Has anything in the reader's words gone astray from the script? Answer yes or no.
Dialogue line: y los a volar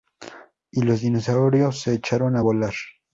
yes